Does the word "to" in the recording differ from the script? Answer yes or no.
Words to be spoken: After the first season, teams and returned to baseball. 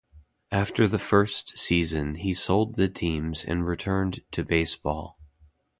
no